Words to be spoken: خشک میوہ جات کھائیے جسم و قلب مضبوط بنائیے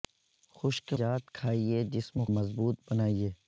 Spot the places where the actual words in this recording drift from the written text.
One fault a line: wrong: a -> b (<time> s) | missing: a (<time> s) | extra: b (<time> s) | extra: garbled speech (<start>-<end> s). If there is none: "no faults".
missing: میوہ (0.9 s)
missing: قلب (2.2 s)